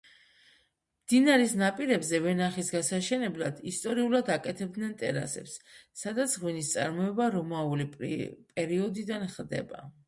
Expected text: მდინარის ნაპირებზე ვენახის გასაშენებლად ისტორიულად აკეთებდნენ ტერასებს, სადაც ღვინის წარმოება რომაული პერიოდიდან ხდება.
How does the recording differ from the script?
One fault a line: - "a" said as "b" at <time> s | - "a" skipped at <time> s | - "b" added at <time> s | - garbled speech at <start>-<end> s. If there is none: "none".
none